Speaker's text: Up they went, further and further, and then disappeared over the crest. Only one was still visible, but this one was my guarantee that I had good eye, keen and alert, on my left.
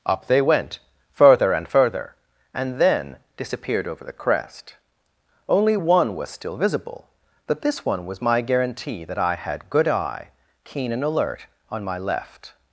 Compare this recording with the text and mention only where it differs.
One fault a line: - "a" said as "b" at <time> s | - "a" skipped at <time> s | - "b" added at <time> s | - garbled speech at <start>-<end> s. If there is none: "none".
none